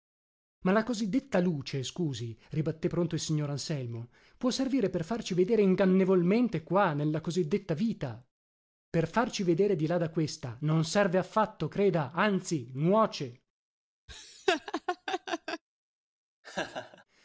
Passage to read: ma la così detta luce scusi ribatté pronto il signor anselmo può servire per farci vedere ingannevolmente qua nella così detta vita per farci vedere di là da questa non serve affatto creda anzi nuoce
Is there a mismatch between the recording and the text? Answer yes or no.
no